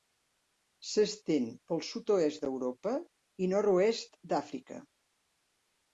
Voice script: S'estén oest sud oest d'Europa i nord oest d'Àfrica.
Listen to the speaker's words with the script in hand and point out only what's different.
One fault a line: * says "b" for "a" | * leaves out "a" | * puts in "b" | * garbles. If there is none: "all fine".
* says "pel" for "oest"